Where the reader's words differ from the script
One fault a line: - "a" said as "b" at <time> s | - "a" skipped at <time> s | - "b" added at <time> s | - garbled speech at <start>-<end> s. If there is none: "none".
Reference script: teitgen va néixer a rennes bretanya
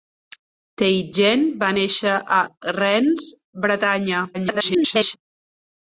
- garbled speech at 4.3-5.2 s